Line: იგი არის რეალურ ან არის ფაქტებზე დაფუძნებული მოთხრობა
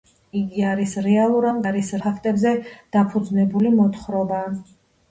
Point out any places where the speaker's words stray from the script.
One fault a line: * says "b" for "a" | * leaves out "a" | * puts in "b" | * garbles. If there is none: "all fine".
all fine